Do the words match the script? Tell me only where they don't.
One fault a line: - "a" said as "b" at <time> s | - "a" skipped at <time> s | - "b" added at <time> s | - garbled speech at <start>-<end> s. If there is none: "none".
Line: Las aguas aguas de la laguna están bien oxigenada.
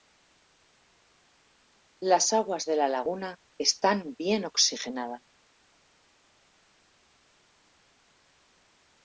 - "aguas" skipped at 2.6 s